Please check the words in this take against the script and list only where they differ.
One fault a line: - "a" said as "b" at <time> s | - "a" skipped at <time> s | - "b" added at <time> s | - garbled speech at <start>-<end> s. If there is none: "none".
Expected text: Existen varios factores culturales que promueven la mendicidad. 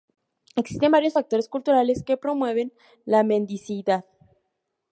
none